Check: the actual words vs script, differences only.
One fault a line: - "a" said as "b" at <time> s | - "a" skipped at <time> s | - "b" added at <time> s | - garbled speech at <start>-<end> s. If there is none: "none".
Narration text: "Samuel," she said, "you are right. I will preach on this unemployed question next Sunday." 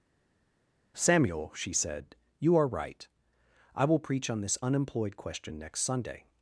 none